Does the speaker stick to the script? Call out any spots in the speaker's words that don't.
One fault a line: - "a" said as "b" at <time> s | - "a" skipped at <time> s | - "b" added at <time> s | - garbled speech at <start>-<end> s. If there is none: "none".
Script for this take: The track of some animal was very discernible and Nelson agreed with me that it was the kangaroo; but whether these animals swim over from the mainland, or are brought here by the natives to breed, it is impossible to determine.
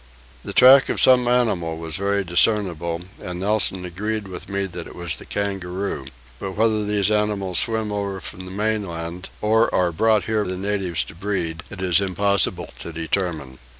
- "by" skipped at 10.4 s